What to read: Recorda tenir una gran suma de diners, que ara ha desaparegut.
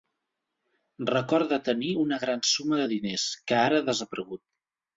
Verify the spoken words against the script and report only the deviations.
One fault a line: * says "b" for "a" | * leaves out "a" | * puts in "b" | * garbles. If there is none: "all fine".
all fine